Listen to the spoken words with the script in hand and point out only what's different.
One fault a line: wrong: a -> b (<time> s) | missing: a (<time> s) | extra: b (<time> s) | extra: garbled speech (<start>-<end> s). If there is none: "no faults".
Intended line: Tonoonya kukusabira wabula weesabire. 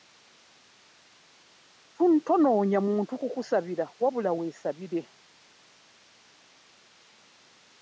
extra: muntu (2.9 s)